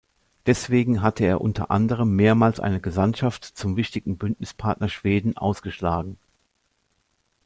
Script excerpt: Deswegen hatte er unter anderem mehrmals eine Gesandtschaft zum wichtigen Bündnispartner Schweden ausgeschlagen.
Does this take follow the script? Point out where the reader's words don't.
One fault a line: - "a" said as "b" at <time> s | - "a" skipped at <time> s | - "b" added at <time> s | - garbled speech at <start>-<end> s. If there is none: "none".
none